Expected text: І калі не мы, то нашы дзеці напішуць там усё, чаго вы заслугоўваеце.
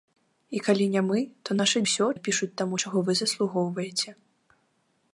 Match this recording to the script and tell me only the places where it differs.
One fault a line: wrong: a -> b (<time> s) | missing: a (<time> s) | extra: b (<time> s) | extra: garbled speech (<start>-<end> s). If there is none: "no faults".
wrong: дзеці -> усё (1.9 s)
missing: усё (2.7 s)